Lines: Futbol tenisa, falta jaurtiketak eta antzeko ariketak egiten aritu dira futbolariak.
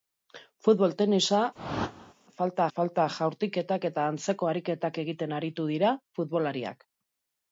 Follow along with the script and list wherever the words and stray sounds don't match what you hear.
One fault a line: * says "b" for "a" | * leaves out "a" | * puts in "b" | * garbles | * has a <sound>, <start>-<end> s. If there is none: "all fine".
* has a whoosh, 1.5-2.1 s
* puts in "falta"